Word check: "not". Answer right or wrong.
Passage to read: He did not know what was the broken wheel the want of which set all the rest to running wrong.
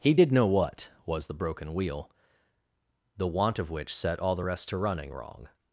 wrong